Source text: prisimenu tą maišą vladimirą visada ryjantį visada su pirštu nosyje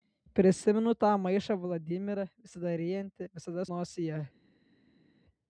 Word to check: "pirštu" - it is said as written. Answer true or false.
false